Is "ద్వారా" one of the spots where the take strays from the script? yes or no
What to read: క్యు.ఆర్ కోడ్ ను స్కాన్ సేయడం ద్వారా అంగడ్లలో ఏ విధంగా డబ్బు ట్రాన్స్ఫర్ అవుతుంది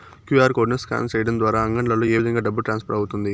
no